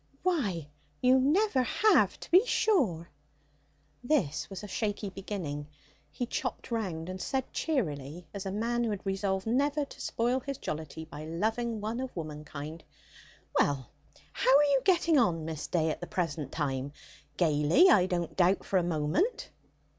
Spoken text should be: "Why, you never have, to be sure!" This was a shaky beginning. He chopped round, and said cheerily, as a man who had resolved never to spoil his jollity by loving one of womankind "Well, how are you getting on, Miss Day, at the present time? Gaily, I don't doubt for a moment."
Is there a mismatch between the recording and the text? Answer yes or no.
no